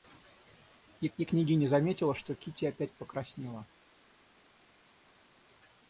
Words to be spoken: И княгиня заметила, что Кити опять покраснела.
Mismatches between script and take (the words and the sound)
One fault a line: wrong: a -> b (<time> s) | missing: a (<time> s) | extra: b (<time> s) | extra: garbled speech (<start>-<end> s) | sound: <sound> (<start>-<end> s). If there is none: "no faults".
extra: и (1.2 s)